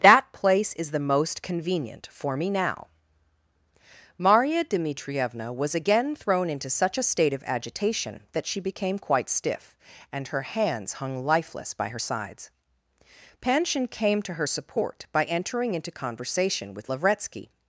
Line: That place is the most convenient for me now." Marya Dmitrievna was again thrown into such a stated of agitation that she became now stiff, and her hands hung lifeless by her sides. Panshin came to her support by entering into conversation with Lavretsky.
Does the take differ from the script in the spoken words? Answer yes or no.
yes